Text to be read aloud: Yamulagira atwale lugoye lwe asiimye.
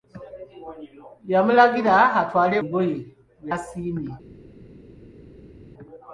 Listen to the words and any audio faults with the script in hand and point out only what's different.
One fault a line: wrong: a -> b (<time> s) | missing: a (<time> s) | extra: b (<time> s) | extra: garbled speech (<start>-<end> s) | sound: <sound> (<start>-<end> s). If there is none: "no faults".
no faults